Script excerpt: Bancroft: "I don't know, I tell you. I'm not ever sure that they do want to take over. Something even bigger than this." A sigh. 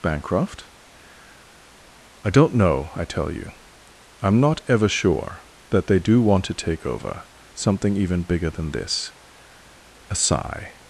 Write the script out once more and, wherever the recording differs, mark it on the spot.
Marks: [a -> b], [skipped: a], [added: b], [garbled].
Bancroft: "I don't know, I tell you. I'm not ever sure that they do want to take over. Something even bigger than this." A sigh.